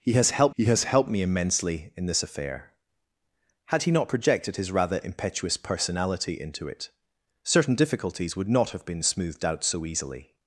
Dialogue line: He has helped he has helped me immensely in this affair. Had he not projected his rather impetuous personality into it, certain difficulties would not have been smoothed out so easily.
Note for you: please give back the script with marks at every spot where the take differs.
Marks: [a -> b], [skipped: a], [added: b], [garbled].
He has helped he has helped me immensely in this affair. Had he not projected his rather impetuous personality into it, certain difficulties would not have been smoothed out so easily.